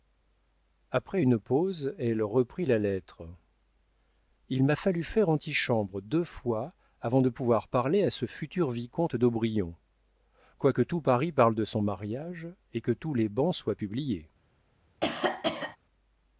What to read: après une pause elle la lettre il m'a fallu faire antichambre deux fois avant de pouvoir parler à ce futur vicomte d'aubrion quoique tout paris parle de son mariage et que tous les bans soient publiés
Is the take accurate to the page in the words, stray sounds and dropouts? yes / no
no